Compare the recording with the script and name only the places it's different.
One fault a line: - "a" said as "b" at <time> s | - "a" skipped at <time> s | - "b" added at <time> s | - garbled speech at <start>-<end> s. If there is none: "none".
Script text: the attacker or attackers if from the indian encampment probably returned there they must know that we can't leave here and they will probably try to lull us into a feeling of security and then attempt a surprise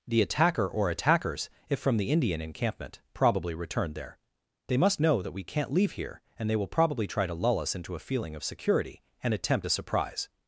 - "then" skipped at 9.3 s